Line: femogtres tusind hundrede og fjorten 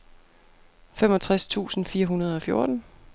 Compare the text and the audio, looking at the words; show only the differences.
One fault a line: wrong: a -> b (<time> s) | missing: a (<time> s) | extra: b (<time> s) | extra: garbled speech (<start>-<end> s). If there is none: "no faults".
extra: fire (1.9 s)